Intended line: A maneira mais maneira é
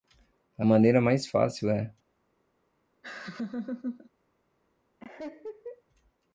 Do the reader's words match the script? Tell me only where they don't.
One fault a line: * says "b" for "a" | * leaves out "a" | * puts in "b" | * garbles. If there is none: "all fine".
* says "fácil" for "maneira"